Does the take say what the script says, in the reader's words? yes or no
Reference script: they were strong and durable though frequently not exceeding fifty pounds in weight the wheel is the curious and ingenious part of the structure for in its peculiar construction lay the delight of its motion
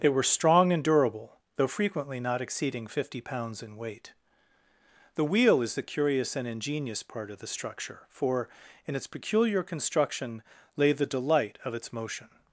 yes